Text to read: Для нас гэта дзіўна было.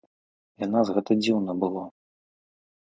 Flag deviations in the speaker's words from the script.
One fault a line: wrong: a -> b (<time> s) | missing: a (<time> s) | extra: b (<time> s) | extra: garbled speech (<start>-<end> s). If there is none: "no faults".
no faults